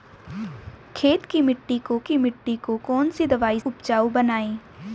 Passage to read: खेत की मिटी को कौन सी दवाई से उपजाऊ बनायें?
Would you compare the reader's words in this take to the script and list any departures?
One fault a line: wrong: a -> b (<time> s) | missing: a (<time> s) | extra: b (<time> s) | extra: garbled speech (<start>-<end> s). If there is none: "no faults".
extra: की मिटी को (2.0 s)
missing: से (3.6 s)